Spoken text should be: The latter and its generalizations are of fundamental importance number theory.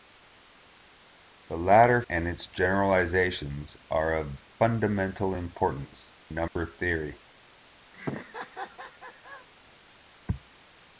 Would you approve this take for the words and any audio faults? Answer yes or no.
no